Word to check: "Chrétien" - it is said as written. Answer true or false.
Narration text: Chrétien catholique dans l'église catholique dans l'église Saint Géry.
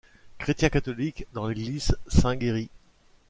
true